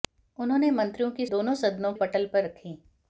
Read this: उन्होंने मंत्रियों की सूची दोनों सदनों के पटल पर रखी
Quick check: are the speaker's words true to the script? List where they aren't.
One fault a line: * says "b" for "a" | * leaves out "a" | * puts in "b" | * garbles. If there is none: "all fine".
* leaves out "सूची"
* leaves out "के"